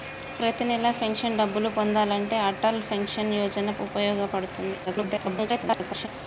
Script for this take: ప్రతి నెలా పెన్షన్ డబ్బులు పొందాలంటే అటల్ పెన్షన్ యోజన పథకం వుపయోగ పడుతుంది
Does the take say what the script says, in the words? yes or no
no